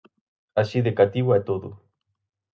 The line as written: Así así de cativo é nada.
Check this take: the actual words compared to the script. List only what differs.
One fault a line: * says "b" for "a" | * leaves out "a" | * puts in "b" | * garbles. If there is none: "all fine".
* leaves out "así"
* says "todo" for "nada"